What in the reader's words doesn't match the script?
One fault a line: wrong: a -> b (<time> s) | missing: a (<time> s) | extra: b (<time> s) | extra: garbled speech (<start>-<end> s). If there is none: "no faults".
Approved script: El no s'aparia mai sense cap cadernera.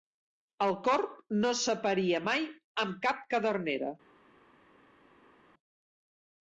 extra: corb (0.9 s)
wrong: sense -> amb (2.9 s)